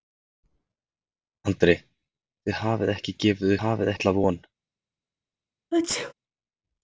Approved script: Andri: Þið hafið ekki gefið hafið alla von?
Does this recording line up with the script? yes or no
yes